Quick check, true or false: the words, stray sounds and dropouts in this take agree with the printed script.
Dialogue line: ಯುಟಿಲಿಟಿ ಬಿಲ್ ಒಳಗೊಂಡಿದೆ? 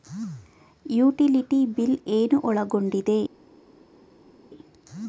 false